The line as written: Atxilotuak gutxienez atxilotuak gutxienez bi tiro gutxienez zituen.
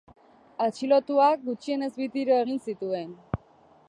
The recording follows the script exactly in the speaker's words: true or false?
false